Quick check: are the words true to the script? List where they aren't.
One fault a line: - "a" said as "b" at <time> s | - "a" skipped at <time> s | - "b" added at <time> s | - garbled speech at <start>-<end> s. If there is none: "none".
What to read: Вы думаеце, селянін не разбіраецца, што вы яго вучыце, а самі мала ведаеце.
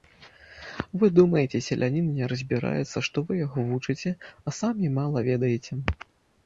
none